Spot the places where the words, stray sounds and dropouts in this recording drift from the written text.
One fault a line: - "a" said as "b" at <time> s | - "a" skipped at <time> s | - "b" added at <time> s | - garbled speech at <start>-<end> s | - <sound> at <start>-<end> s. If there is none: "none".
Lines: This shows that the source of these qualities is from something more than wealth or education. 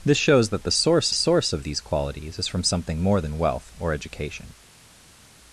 - "source" added at 1.1 s